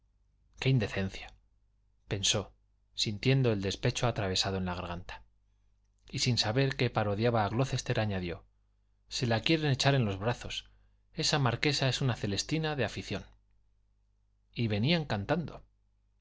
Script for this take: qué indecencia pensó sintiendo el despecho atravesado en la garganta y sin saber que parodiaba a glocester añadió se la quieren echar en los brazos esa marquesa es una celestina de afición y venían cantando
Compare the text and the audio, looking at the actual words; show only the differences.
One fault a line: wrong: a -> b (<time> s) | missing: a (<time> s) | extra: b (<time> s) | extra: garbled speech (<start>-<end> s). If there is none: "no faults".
no faults